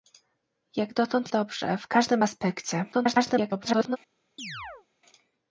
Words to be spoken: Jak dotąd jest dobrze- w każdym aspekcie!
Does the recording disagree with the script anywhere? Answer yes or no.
yes